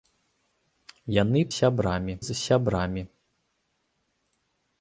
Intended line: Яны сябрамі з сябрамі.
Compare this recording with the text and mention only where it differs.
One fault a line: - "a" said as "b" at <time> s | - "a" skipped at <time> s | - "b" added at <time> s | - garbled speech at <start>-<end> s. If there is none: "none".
none